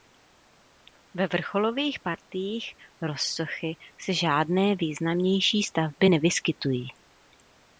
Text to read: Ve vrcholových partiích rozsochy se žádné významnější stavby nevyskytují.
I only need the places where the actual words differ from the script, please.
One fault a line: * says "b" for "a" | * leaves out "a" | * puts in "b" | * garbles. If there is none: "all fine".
all fine